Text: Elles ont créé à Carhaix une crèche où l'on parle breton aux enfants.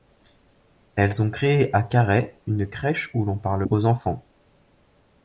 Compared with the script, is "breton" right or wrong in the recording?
wrong